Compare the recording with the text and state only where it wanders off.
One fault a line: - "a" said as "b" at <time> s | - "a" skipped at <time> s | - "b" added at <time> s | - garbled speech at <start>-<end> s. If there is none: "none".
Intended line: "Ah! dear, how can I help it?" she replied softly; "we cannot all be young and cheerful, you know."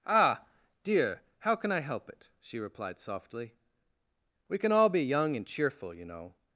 - "cannot" said as "can" at 4.6 s